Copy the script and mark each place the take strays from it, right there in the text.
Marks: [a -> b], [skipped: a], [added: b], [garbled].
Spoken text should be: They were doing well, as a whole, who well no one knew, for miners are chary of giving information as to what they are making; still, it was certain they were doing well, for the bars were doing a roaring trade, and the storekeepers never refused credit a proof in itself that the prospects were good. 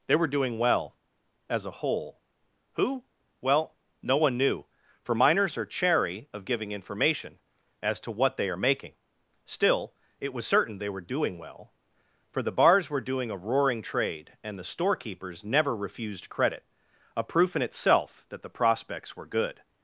They were doing well, as a whole, who well no one knew, for miners are chary of giving information as to what they are making; still, it was certain they were doing well, for the bars were doing a roaring trade, and the storekeepers never refused credit a proof in itself that the prospects were good.